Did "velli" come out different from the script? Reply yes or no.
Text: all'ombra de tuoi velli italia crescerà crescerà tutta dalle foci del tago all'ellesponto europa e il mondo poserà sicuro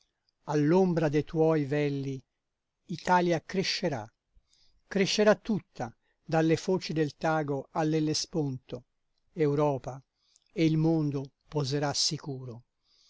no